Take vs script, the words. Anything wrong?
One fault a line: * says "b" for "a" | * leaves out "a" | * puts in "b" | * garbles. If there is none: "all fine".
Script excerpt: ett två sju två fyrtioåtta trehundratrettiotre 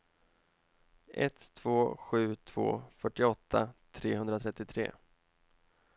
all fine